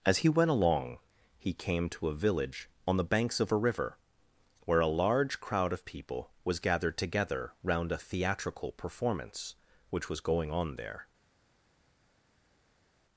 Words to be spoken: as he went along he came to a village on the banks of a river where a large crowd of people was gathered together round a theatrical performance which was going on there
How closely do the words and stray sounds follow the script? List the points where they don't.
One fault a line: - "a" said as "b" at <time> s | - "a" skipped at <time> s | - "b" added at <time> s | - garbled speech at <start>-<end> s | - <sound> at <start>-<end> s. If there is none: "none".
none